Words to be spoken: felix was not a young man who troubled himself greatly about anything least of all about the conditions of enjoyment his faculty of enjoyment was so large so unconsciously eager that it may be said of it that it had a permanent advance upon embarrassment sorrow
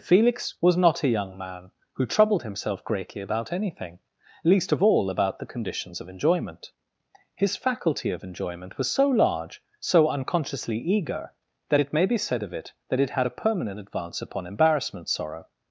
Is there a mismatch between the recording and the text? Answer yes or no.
no